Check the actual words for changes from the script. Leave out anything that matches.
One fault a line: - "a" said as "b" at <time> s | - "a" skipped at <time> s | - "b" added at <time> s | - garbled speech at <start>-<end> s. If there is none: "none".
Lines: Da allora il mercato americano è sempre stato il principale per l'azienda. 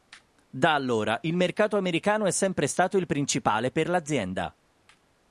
none